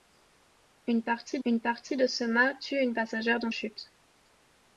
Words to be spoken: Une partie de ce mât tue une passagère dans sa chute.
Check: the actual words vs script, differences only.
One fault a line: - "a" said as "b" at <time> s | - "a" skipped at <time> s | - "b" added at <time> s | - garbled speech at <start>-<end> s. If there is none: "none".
- "une partie" added at 1.4 s
- "sa" skipped at 3.5 s